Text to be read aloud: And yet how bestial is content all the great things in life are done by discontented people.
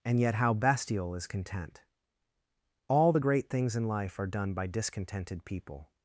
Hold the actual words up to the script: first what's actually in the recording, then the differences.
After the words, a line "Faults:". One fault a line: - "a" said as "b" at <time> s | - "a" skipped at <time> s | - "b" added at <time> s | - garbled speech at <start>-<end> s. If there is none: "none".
And yet how bestial is content all the great things in life are done by discontented people.
Faults:
none